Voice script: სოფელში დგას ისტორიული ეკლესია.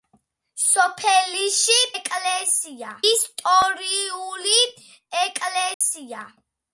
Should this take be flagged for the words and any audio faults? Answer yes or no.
yes